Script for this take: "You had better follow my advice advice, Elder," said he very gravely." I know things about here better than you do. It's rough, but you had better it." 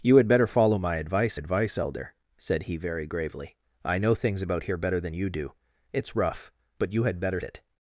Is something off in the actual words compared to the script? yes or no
no